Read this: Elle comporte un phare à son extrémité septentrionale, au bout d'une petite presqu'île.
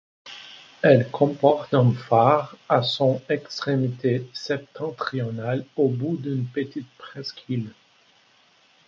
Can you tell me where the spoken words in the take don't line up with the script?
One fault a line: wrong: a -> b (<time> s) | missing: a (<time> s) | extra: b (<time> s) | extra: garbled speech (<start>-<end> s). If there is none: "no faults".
no faults